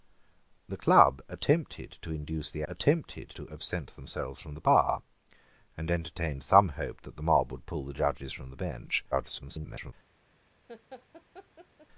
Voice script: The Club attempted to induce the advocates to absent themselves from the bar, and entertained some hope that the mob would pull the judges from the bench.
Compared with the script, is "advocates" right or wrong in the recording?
wrong